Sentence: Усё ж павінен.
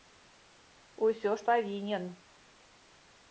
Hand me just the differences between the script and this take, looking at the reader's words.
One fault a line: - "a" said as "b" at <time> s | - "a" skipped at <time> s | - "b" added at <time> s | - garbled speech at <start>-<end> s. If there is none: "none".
none